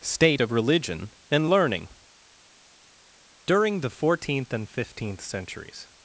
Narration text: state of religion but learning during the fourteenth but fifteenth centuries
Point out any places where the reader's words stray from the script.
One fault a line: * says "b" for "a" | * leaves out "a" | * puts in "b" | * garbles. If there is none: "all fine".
* says "and" for "but"
* says "and" for "but"